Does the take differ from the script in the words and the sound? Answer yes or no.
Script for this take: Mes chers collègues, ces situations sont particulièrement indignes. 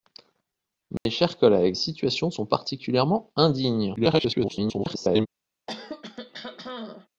yes